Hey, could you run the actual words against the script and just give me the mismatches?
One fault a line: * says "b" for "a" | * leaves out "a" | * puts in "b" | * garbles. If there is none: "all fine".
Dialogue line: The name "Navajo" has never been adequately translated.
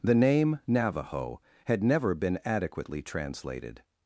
* says "had" for "has"